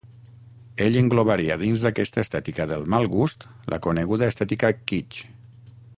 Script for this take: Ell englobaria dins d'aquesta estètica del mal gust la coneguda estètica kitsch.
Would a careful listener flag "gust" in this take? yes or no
no